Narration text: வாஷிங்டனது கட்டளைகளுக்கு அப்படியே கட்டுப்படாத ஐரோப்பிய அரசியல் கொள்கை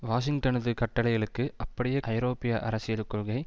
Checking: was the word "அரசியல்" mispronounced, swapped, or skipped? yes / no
no